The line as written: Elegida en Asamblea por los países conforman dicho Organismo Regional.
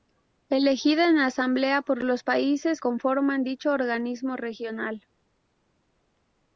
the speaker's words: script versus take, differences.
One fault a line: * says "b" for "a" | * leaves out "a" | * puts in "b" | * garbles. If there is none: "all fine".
all fine